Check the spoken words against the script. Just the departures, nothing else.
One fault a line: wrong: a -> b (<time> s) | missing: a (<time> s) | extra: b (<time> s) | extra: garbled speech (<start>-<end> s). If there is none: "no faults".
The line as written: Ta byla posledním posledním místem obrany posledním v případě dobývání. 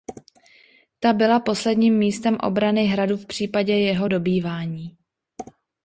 missing: posledním (2.0 s)
wrong: posledním -> hradu (2.9 s)
extra: jeho (3.7 s)